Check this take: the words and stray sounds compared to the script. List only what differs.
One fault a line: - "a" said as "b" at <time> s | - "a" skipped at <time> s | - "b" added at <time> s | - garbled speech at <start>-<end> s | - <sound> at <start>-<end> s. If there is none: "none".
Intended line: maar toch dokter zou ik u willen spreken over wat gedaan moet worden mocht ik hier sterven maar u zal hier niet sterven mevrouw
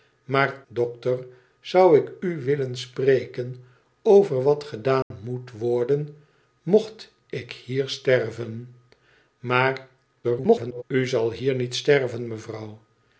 - "toch" skipped at 0.6 s
- dropout at 5.0-5.1 s
- garbled speech at 10.2-10.8 s